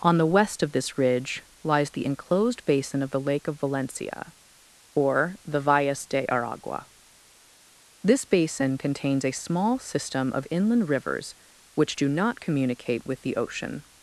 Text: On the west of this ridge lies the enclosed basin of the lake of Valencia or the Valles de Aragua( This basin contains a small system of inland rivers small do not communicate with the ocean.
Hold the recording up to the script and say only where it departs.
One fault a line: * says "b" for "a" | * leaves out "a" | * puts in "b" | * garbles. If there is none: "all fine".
* says "which" for "small"